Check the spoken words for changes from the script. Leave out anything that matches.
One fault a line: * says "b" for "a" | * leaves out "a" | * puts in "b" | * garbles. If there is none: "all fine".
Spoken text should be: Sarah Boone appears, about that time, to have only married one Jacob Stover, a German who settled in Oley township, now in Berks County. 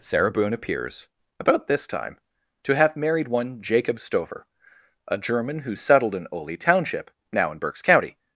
* says "this" for "that"
* leaves out "only"